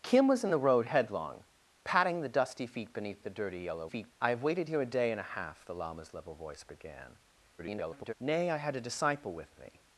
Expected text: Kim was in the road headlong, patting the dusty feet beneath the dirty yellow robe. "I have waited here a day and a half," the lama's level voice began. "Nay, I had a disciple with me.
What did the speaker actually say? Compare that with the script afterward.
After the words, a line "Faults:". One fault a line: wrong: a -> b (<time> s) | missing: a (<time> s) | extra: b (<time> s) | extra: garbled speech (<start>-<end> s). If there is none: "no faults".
Kim was in the road headlong, patting the dusty feet beneath the dirty yellow feet. "I have waited here a day and a half," the lama's level voice began. [garbled] "Nay, I had a disciple with me.
Faults:
wrong: robe -> feet (3.8 s)
extra: garbled speech (7.6-8.1 s)